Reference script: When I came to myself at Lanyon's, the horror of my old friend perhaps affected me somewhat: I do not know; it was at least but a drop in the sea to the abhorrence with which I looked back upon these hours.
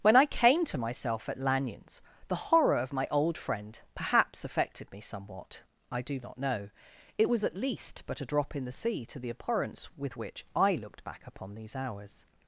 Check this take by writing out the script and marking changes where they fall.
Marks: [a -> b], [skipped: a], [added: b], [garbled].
When I came to myself at Lanyon's, the horror of my old friend perhaps affected me somewhat: I do not know; it was at least but a drop in the sea to the abhorrence with which I looked back upon these hours.